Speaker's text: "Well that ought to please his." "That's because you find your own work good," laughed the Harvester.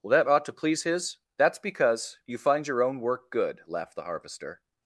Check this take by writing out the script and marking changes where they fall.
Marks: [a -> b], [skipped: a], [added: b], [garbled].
"Well that ought to please his." "That's because you find your own work good," laughed the Harvester.